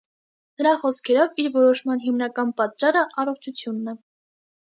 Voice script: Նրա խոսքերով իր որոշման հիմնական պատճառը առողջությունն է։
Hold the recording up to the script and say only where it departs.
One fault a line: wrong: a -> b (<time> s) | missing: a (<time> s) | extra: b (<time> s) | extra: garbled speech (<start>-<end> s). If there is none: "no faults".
no faults